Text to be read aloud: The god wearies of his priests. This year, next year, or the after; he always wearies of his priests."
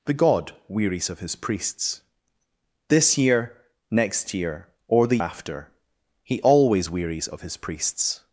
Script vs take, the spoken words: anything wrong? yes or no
no